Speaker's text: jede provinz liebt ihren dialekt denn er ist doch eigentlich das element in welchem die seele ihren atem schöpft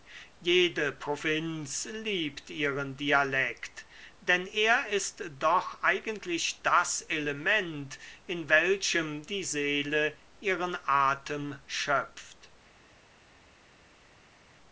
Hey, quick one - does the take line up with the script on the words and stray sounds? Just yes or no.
yes